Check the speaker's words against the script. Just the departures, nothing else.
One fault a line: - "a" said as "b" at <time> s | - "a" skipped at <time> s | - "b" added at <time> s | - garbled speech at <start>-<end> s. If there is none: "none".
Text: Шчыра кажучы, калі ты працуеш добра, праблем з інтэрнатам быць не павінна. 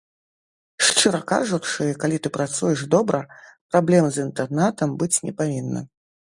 none